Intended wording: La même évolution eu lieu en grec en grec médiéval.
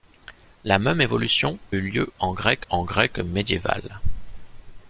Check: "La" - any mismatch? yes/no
no